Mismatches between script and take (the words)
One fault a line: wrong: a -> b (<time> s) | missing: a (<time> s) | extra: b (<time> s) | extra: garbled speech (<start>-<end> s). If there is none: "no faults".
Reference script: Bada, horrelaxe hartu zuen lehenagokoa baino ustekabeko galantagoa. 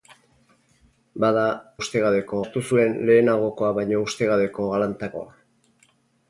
wrong: horrelaxe -> ustekabeko (1.8 s)